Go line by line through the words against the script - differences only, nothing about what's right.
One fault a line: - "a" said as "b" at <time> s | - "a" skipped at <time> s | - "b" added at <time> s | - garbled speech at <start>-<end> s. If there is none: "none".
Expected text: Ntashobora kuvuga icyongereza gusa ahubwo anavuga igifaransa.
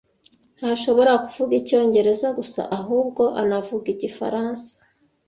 none